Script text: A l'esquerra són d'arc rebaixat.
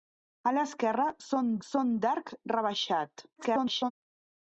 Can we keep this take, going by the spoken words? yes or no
no